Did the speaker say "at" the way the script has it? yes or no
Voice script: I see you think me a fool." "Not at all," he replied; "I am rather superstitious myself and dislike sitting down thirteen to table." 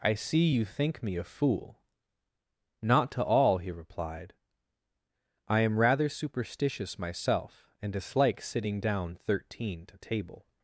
no